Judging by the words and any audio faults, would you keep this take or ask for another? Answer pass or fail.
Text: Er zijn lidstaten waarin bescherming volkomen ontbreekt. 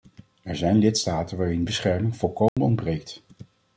fail